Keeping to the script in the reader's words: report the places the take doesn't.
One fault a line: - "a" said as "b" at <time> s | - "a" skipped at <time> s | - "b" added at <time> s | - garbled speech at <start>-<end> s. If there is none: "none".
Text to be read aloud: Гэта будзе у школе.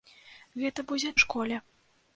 none